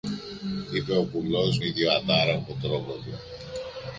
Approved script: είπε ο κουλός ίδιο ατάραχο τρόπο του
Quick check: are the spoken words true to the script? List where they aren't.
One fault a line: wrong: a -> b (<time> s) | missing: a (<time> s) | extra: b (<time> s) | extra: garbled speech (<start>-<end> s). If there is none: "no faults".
no faults